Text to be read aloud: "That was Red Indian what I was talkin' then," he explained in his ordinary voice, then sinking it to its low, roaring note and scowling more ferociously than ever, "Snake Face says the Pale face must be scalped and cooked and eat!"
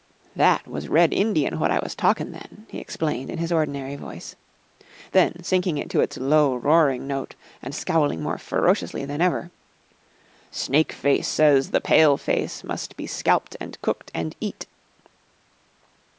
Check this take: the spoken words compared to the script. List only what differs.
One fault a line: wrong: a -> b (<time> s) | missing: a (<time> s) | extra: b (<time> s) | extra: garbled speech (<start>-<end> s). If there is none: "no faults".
no faults